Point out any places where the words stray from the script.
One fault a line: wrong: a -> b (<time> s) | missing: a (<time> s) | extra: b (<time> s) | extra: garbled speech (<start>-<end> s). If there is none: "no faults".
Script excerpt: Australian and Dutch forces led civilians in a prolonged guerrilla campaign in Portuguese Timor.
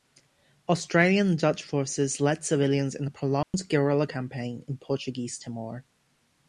no faults